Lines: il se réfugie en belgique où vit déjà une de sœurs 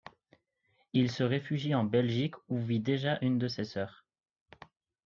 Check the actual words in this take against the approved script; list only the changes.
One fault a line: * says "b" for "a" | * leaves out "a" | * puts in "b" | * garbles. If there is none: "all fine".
* puts in "ses"